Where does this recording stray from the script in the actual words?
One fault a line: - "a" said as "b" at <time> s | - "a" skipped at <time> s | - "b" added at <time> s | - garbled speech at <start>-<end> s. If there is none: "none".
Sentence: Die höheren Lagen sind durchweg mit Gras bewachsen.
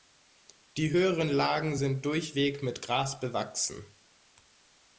none